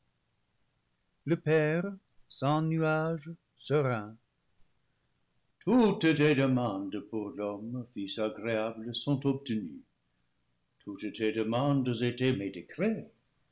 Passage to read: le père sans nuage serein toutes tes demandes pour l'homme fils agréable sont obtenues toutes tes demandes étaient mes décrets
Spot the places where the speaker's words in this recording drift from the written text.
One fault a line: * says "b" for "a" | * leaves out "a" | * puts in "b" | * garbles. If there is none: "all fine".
all fine